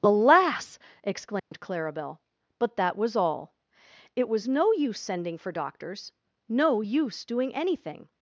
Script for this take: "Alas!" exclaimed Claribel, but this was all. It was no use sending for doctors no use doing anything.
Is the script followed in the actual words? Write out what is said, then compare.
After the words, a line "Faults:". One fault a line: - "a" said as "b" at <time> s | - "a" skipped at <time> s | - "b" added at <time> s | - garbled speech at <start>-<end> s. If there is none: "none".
"Alas!" exclaimed Claribel, but that was all. It was no use sending for doctors no use doing anything.
Faults:
- "this" said as "that" at 2.8 s